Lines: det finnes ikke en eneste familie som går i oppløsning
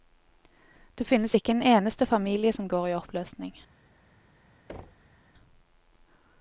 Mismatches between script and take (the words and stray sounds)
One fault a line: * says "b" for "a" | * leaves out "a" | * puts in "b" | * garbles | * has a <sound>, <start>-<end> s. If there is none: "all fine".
* has a thud, 4.7-5.1 s